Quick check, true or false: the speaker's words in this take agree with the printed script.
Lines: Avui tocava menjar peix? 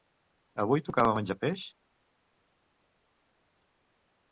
true